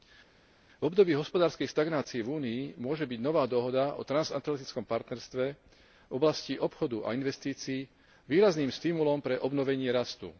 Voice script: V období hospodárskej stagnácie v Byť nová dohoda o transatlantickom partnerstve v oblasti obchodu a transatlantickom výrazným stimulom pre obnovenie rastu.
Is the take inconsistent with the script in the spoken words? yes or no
yes